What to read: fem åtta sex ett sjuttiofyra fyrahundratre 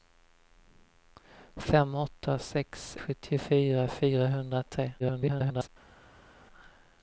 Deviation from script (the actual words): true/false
true